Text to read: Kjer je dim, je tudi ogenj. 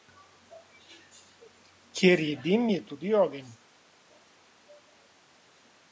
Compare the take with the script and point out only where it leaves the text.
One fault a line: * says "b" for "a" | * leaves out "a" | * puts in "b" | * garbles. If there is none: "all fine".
all fine